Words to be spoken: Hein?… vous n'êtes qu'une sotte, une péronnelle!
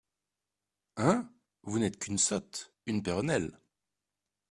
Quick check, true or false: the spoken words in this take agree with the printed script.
true